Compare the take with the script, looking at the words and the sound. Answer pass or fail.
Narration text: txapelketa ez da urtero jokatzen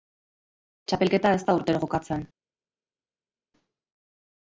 pass